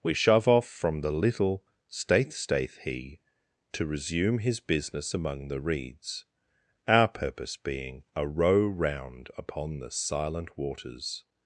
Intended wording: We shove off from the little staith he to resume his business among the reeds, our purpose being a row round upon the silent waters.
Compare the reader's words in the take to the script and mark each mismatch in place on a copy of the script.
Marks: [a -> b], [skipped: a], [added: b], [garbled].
We shove off from the little staith [added: staith] he to resume his business among the reeds, our purpose being a row round upon the silent waters.